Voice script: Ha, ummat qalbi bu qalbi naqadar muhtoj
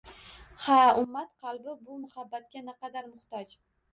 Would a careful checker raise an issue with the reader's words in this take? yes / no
yes